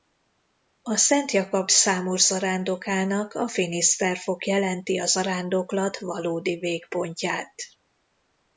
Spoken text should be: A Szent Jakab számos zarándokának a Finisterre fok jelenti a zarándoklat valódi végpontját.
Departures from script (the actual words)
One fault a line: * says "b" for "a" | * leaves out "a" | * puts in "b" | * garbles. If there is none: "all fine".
all fine